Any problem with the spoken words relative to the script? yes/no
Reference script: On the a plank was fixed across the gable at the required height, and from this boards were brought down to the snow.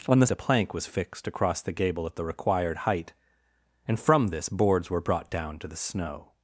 no